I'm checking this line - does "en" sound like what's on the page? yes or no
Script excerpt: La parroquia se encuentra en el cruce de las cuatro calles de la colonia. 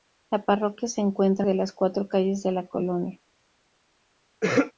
no